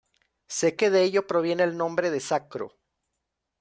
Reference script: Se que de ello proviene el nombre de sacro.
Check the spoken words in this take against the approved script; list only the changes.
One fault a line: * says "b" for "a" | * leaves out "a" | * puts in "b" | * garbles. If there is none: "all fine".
all fine